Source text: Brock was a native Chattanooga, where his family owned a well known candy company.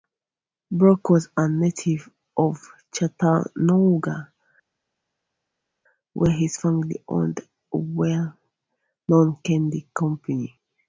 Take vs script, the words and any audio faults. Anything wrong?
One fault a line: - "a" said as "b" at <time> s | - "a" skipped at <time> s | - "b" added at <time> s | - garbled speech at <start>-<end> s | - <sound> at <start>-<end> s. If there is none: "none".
- "of" added at 2.4 s